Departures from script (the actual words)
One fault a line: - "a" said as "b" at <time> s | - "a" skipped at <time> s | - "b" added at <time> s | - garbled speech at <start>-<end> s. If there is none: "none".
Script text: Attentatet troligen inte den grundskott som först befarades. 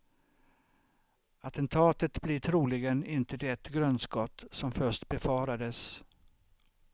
- "blir" added at 2.2 s
- "den" said as "det" at 3.4 s